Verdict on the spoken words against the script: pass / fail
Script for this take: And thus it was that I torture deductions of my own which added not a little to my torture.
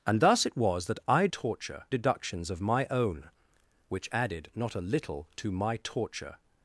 pass